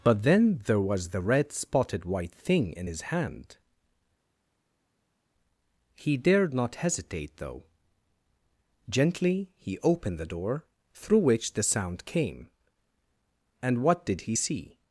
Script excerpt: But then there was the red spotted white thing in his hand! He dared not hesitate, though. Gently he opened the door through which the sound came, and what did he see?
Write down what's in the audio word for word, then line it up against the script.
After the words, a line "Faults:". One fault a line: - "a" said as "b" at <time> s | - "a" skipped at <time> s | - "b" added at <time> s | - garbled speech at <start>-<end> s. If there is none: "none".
But then there was the red spotted white thing in his hand! He dared not hesitate, though. Gently he opened the door through which the sound came, and what did he see?
Faults:
none